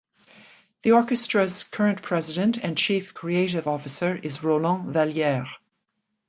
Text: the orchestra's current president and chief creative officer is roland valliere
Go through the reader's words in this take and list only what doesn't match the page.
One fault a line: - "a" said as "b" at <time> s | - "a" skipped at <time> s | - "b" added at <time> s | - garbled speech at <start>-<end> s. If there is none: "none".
none